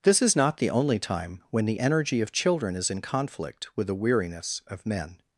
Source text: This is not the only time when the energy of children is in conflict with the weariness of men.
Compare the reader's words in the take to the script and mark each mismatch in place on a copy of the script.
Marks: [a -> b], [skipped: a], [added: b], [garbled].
This is not the only time when the energy of children is in conflict with the weariness of men.